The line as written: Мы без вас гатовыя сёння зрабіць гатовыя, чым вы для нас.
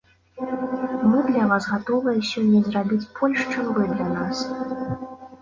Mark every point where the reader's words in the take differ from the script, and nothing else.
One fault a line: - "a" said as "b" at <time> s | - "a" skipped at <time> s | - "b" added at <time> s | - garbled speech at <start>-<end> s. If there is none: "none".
- "без" said as "для" at 1.3 s
- "гатовыя" said as "больш" at 3.2 s